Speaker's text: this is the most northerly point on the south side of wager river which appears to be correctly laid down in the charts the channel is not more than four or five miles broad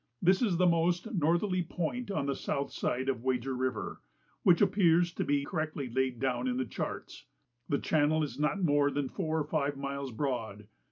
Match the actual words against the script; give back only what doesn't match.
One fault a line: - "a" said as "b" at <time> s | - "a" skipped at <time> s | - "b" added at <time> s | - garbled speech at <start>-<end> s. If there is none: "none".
none